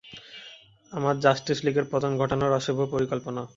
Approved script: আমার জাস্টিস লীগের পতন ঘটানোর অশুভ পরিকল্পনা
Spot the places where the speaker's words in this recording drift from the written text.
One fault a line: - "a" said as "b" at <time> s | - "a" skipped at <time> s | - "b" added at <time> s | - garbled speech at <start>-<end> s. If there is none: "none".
none